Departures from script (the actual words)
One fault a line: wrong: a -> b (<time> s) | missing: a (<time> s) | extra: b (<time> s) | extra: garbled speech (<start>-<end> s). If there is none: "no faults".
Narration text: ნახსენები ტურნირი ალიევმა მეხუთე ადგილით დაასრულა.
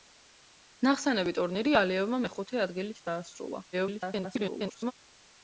extra: garbled speech (3.7-4.9 s)